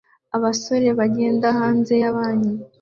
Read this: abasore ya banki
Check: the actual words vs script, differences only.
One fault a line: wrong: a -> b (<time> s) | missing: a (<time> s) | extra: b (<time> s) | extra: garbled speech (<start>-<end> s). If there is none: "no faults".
extra: bagenda hanze (1.0 s)